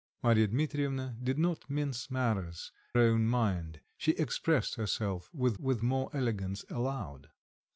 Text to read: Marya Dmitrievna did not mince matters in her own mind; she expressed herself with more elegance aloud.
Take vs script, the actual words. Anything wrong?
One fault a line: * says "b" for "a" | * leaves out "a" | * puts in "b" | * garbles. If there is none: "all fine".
* leaves out "in her"
* puts in "with"